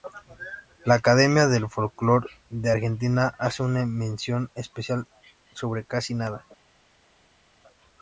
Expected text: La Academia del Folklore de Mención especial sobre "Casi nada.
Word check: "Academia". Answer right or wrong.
right